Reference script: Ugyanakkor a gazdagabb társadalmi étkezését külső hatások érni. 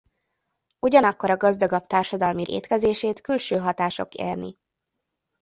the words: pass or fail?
pass